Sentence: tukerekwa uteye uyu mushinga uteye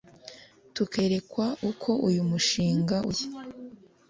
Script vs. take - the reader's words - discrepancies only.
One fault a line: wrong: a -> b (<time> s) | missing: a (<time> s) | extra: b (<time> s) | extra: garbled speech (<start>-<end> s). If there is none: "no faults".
wrong: uteye -> uko (1.7 s)